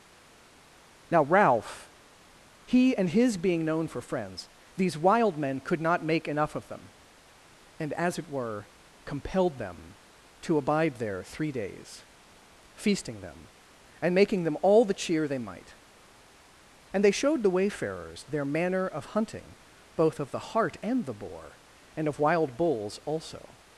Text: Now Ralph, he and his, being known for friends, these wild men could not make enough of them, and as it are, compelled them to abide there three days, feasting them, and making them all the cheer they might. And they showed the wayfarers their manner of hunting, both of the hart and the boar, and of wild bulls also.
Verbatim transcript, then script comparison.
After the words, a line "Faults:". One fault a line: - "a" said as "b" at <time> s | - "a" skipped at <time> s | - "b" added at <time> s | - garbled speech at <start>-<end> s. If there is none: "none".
Now Ralph, he and his, being known for friends, these wild men could not make enough of them, and as it were, compelled them to abide there three days, feasting them, and making them all the cheer they might. And they showed the wayfarers their manner of hunting, both of the hart and the boar, and of wild bulls also.
Faults:
- "are" said as "were" at 8.3 s